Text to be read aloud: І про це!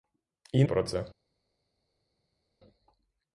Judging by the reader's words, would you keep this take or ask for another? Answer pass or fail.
pass